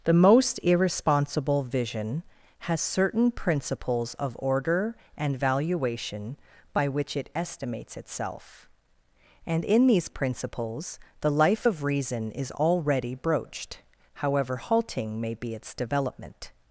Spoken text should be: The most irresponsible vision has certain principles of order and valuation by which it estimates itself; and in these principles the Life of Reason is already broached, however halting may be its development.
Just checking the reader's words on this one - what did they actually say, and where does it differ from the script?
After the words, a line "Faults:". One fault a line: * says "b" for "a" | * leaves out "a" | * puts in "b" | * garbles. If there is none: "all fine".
The most irresponsible vision has certain principles of order and valuation by which it estimates itself; and in these principles the Life of Reason is already broached, however halting may be its development.
Faults:
all fine